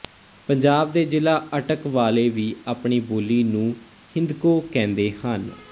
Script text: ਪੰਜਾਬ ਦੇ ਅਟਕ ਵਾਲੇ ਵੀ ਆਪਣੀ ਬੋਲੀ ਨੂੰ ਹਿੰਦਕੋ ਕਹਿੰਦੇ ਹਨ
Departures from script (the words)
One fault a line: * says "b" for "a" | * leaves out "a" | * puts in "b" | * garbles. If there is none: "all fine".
* puts in "ਜ਼ਿਲ੍ਹਾ"